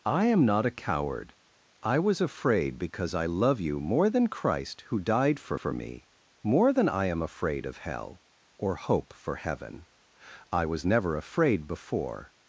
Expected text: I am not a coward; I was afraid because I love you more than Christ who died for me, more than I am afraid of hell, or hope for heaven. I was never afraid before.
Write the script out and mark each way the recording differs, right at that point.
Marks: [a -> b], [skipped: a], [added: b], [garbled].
I am not a coward; I was afraid because I love you more than Christ who died for [added: for] me, more than I am afraid of hell, or hope for heaven. I was never afraid before.